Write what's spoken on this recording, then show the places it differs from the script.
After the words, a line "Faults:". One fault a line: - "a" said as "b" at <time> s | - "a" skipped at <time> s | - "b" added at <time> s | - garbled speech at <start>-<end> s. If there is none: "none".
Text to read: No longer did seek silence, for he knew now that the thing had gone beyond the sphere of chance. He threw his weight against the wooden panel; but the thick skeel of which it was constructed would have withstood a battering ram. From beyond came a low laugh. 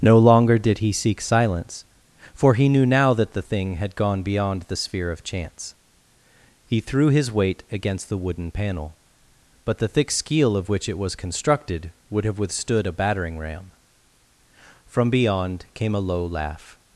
No longer did he seek silence, for he knew now that the thing had gone beyond the sphere of chance. He threw his weight against the wooden panel; but the thick skeel of which it was constructed would have withstood a battering ram. From beyond came a low laugh.
Faults:
- "he" added at 0.8 s